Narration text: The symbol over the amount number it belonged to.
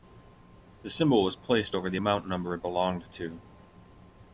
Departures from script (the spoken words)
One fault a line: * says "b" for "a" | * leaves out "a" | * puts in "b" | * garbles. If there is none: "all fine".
* puts in "was placed"